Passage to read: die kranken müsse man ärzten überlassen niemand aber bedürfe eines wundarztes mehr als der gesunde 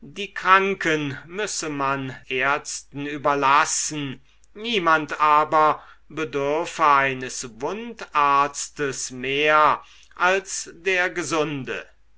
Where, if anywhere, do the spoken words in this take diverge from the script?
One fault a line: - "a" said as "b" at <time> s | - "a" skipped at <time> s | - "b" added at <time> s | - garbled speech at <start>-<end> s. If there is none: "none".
none